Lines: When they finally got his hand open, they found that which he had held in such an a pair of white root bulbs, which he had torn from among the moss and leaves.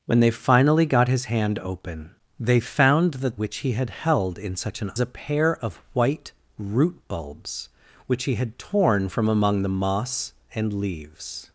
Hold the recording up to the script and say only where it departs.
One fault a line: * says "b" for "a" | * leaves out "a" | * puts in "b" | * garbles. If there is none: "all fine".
all fine